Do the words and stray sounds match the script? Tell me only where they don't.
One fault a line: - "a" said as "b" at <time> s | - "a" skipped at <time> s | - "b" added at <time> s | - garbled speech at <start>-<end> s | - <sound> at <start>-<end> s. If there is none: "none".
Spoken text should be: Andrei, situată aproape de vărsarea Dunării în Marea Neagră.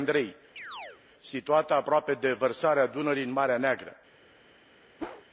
- chirp at 0.6-1.0 s
- whoosh at 5.0-5.2 s